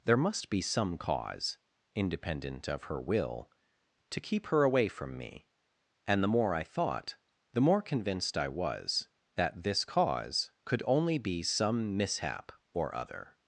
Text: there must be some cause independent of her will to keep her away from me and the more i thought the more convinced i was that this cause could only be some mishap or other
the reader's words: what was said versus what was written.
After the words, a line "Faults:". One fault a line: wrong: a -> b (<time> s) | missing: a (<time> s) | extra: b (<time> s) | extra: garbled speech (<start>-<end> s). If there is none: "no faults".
there must be some cause independent of her will to keep her away from me and the more i thought the more convinced i was that this cause could only be some mishap or other
Faults:
no faults